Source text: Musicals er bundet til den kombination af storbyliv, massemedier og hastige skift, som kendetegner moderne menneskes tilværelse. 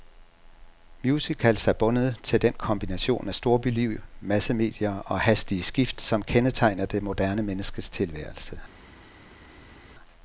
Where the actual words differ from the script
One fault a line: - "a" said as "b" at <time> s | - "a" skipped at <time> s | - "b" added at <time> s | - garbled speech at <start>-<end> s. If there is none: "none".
- "det" added at 6.8 s